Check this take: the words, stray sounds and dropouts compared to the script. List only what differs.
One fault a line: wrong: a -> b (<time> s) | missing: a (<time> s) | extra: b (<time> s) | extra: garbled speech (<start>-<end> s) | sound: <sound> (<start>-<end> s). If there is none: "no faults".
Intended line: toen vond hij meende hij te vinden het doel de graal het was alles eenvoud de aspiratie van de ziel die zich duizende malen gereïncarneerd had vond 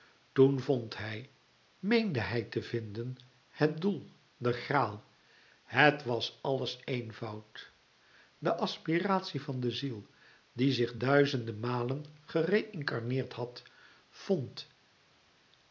no faults